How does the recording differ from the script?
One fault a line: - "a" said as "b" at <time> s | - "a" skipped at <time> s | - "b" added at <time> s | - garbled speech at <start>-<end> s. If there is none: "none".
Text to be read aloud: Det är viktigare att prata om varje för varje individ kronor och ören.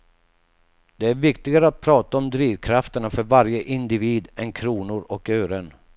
- "varje" said as "drivkrafterna" at 2.3 s
- "än" added at 4.4 s